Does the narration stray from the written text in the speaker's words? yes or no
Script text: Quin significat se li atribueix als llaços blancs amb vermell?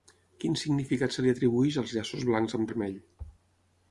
no